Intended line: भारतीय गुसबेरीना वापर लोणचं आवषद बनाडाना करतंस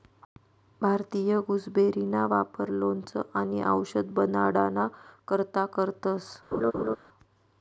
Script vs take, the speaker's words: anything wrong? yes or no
yes